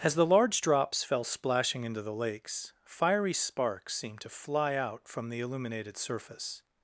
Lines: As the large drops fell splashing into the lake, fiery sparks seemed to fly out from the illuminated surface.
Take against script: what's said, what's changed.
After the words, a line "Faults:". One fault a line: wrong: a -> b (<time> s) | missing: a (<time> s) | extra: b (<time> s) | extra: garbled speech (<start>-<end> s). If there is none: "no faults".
As the large drops fell splashing into the lakes, fiery sparks seemed to fly out from the illuminated surface.
Faults:
wrong: lake -> lakes (2.1 s)